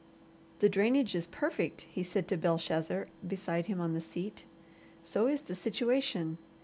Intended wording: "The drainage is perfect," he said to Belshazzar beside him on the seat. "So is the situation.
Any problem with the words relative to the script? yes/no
no